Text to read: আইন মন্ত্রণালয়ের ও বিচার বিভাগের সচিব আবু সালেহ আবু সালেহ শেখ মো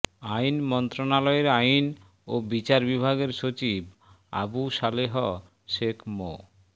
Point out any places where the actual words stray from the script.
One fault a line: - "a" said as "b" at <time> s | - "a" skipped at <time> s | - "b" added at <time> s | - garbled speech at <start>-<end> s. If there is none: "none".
- "আইন" added at 1.6 s
- "আবু সালেহ" skipped at 5.1 s